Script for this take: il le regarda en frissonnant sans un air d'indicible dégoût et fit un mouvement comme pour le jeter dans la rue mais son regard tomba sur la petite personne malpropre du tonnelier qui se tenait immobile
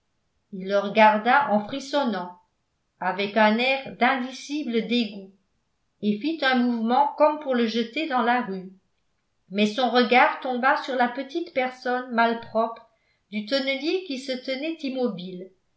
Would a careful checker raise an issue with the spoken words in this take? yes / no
yes